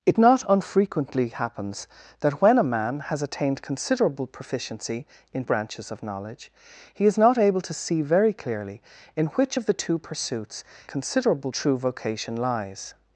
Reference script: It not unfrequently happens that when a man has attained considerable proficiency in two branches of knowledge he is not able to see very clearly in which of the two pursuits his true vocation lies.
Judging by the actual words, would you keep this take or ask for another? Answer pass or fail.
fail